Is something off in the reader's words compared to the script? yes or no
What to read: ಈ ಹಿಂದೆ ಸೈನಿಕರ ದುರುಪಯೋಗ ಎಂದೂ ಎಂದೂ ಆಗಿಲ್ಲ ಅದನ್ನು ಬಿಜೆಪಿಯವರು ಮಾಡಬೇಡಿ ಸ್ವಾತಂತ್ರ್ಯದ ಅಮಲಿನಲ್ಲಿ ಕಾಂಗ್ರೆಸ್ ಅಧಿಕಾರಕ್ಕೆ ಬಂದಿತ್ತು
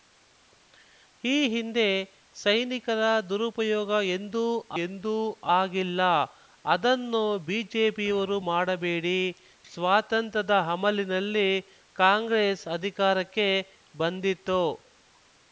no